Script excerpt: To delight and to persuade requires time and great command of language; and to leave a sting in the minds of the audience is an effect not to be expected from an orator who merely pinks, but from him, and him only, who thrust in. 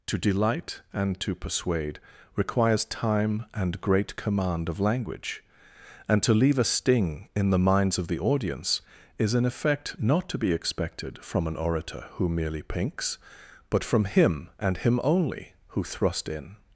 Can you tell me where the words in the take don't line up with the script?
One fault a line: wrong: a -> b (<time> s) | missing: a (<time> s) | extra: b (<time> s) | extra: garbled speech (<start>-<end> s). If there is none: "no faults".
no faults